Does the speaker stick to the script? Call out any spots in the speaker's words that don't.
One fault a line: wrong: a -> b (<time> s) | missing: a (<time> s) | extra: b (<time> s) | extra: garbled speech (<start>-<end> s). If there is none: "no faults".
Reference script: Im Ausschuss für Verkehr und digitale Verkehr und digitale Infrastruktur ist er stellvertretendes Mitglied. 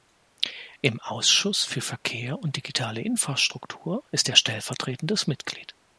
missing: Verkehr und digitale (3.0 s)